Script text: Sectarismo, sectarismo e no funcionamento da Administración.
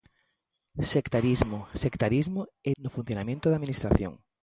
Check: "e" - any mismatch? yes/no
no